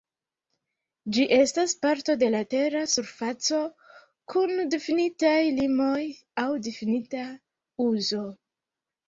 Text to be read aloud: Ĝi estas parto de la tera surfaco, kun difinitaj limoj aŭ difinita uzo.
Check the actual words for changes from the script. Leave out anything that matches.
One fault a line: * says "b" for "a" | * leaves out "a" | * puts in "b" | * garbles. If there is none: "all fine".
all fine